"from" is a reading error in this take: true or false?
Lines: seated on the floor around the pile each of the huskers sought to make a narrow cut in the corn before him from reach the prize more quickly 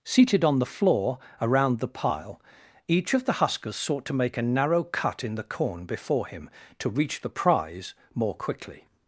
true